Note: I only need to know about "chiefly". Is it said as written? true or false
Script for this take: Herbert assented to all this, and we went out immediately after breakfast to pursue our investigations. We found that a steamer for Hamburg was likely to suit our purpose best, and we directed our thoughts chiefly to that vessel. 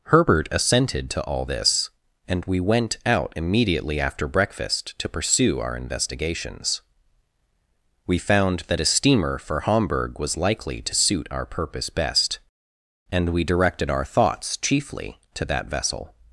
true